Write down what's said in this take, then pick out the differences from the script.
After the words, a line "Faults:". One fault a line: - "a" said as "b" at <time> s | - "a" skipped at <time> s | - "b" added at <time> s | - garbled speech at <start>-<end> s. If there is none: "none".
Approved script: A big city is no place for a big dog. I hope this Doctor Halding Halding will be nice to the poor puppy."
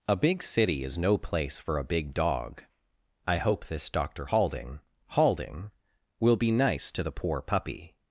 A big city is no place for a big dog. I hope this Doctor Halding Halding will be nice to the poor puppy."
Faults:
none